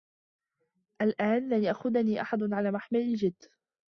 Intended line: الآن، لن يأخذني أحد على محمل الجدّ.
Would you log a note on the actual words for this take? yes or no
no